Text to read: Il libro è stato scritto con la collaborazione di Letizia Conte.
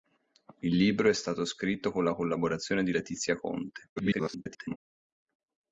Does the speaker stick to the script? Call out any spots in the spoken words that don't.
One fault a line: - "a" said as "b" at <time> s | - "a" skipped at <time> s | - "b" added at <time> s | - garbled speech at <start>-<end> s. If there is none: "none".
- garbled speech at 4.0-4.8 s